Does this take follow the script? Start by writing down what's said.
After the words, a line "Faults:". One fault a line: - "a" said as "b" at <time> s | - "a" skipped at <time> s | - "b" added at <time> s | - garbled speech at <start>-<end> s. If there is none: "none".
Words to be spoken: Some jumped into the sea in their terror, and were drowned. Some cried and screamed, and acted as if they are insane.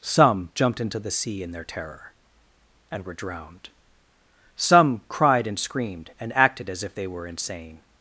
Some jumped into the sea in their terror, and were drowned. Some cried and screamed, and acted as if they were insane.
Faults:
- "are" said as "were" at 7.1 s